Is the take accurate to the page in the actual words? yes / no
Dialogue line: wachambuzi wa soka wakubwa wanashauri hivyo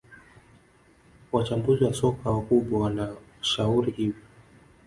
yes